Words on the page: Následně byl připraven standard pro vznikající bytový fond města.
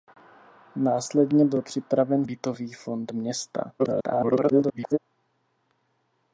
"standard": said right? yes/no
no